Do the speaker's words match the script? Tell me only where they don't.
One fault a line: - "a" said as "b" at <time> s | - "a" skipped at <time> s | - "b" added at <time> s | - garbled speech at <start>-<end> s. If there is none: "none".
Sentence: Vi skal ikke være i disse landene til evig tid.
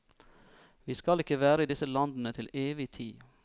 none